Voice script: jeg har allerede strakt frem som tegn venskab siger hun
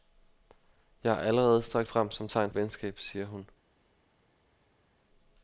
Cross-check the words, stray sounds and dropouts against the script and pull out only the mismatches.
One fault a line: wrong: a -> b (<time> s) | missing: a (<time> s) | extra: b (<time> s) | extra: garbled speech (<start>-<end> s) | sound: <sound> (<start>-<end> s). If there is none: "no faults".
no faults